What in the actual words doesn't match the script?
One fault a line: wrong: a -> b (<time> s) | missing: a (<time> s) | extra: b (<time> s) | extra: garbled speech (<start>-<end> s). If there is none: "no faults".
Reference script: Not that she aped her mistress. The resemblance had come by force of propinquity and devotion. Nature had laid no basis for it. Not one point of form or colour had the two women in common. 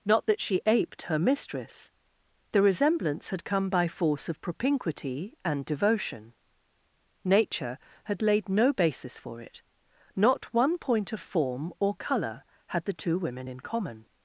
no faults